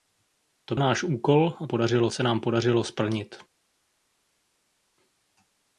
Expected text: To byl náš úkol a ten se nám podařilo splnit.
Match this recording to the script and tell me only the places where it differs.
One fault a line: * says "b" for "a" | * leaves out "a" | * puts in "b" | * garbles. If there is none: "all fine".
* leaves out "byl"
* says "podařilo" for "ten"